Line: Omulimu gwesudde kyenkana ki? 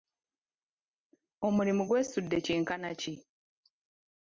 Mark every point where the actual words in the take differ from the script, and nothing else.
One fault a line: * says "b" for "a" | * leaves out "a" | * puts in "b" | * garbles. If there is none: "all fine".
all fine